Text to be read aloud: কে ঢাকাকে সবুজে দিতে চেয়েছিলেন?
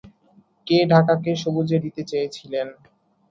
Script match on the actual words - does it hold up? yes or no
yes